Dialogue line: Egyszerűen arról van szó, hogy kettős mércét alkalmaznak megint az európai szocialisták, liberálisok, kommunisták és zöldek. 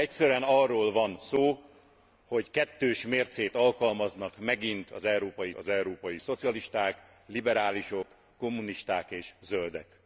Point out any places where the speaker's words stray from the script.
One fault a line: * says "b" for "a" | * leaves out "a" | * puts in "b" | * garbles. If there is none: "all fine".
* puts in "az európai"